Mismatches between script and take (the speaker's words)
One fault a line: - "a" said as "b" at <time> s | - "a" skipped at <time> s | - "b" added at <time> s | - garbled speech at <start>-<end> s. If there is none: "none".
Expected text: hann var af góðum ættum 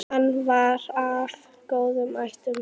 none